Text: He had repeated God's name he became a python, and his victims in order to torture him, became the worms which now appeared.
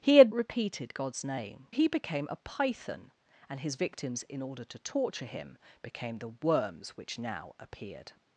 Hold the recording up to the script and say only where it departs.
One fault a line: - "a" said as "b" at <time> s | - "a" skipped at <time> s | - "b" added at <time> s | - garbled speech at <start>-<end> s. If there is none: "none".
none